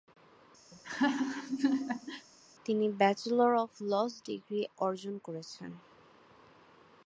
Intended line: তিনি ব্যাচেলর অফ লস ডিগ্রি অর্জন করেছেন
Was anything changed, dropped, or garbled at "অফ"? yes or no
no